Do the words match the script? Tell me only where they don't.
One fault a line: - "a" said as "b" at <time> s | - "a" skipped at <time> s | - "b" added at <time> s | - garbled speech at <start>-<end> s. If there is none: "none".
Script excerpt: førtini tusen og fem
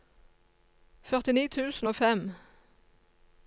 none